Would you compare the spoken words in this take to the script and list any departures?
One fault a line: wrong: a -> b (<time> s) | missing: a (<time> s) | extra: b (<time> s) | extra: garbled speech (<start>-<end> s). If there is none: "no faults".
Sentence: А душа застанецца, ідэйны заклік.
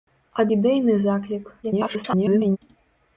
missing: душа застанецца (0.5 s)
extra: garbled speech (1.6-2.6 s)